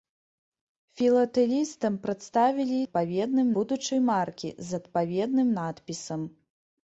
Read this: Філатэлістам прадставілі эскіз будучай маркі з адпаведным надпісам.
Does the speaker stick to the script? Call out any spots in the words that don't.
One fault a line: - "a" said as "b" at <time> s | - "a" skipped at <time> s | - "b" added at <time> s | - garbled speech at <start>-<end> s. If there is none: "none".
- "эскіз" said as "адпаведным" at 2.8 s